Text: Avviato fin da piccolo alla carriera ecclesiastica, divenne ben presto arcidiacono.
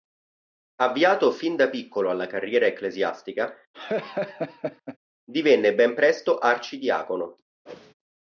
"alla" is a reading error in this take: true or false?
false